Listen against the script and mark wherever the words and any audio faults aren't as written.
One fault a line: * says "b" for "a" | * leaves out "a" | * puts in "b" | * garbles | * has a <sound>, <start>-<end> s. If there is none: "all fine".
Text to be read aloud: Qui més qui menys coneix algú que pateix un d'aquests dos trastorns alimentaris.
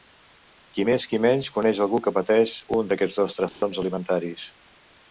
* has a dropout, 3.5-3.6 s